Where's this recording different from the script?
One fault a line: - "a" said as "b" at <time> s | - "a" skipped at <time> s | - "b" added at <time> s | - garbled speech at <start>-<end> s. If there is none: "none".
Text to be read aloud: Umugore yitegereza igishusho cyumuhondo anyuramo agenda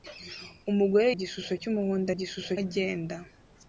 - "yitegereza" skipped at 1.1 s
- "anyuramo" said as "igishusho" at 2.1 s